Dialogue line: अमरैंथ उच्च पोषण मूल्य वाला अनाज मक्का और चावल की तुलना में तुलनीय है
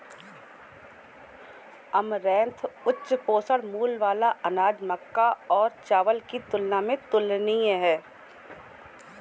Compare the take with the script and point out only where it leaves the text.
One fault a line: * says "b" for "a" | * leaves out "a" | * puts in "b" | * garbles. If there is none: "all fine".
all fine